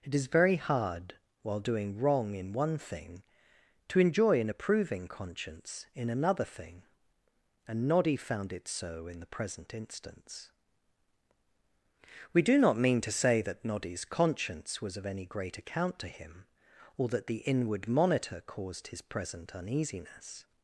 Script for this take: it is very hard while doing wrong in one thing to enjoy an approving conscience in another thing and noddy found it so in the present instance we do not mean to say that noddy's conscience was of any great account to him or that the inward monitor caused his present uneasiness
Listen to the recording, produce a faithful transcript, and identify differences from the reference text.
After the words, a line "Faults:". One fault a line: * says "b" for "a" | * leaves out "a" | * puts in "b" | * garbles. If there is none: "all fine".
it is very hard while doing wrong in one thing to enjoy an approving conscience in another thing and noddy found it so in the present instance we do not mean to say that noddy's conscience was of any great account to him or that the inward monitor caused his present uneasiness
Faults:
all fine